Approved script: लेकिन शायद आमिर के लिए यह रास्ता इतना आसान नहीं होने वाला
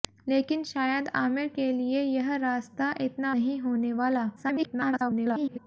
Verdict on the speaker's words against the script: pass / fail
fail